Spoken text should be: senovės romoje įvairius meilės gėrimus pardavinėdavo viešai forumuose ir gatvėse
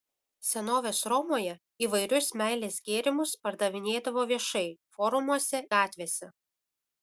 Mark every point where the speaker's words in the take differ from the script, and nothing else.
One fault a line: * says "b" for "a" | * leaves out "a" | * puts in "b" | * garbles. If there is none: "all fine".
* leaves out "ir"